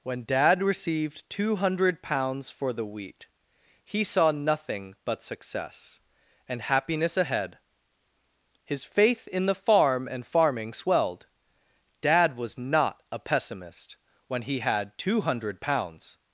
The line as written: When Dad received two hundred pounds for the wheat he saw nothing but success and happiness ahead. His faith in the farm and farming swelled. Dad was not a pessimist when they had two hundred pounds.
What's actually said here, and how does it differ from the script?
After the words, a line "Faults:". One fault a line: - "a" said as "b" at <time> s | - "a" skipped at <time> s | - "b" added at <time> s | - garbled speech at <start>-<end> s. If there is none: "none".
When Dad received two hundred pounds for the wheat he saw nothing but success and happiness ahead. His faith in the farm and farming swelled. Dad was not a pessimist when he had two hundred pounds.
Faults:
- "they" said as "he" at 14.4 s